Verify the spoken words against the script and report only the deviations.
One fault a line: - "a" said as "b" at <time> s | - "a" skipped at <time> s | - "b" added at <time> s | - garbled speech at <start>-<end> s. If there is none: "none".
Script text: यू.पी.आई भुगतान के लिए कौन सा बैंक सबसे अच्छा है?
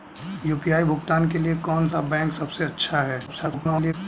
- garbled speech at 3.3-3.9 s